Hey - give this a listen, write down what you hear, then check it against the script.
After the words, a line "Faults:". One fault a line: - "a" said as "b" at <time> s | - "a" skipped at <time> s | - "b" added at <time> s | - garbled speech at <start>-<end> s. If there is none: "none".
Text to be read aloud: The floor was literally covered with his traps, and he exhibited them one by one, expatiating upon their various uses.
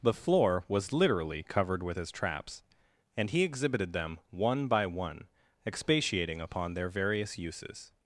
The floor was literally covered with his traps, and he exhibited them one by one, expatiating upon their various uses.
Faults:
none